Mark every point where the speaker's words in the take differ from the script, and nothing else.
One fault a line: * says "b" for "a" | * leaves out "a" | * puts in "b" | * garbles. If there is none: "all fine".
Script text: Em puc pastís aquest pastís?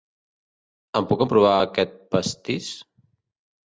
* says "emprovar" for "pastís"